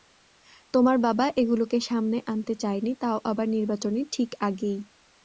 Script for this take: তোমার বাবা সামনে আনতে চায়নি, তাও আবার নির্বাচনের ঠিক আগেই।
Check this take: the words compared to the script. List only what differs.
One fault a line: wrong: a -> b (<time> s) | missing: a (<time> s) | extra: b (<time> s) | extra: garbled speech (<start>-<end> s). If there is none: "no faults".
extra: এগুলোকে (1.4 s)